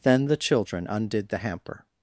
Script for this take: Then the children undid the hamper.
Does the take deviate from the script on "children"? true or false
false